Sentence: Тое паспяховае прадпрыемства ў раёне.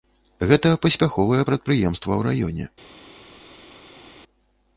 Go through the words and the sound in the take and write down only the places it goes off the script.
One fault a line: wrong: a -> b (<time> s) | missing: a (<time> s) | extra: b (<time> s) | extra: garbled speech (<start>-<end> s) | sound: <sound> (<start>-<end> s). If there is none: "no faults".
wrong: Тое -> Гэта (0.5 s)